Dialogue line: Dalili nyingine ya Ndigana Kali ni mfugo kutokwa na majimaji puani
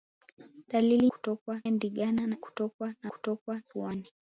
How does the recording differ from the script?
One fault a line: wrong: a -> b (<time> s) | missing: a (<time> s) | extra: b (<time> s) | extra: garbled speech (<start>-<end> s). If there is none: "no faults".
wrong: nyingine -> kutokwa (1.1 s)
missing: Kali ni mfugo (2.4 s)
wrong: majimaji -> kutokwa (3.1 s)